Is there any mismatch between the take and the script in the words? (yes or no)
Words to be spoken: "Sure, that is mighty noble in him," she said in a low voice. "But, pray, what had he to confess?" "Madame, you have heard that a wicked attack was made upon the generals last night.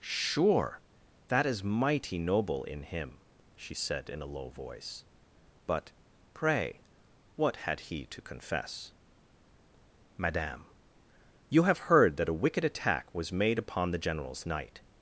yes